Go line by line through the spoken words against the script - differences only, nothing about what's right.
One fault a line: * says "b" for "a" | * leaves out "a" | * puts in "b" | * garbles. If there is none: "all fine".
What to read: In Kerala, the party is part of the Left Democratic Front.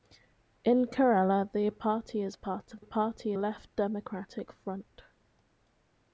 * says "party" for "the"